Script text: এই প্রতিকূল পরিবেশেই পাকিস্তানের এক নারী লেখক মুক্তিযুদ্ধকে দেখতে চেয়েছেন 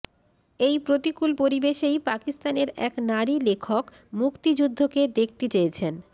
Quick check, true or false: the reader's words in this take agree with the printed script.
true